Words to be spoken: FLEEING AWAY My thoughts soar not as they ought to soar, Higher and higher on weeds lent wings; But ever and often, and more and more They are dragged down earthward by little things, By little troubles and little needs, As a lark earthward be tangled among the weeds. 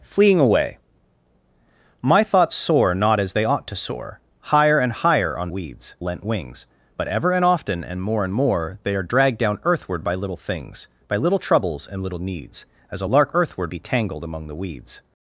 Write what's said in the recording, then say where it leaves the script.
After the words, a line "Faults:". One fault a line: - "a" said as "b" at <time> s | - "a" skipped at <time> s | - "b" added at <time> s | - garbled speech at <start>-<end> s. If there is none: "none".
FLEEING AWAY My thoughts soar not as they ought to soar, Higher and higher on weeds lent wings; But ever and often, and more and more They are dragged down earthward by little things, By little troubles and little needs, As a lark earthward be tangled among the weeds.
Faults:
none